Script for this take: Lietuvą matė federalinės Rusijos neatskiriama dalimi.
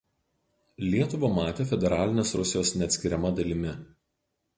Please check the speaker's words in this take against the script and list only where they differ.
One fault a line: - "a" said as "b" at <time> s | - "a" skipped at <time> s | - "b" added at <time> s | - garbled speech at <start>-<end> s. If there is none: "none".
none